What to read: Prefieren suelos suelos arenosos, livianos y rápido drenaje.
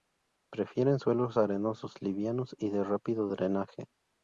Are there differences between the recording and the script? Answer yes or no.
yes